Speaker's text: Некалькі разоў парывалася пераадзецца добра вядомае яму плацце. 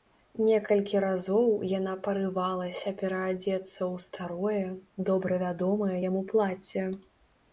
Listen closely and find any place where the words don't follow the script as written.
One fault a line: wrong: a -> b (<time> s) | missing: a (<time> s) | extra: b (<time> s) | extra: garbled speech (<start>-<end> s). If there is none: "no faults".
extra: яна (1.8 s)
extra: ў старое (3.8 s)